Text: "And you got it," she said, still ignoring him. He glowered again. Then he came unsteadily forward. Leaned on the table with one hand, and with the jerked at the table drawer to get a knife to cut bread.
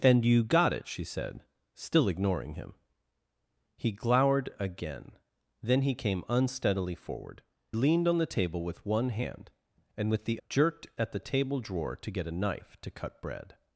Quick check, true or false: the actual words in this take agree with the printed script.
true